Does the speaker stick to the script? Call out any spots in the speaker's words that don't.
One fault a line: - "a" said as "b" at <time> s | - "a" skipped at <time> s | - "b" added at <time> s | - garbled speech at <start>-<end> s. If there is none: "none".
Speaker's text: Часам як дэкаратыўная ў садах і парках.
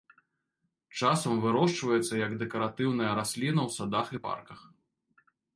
- "вырошчваецца" added at 1.4 s
- "расліна" added at 3.2 s